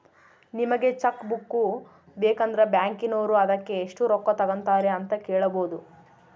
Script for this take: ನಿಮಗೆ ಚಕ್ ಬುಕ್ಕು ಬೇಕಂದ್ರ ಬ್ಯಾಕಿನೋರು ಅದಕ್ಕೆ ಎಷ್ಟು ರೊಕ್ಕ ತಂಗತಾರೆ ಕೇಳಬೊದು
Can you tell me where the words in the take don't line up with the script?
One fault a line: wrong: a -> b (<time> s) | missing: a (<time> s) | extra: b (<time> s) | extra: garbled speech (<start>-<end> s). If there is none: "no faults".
extra: ಅಂತ (5.0 s)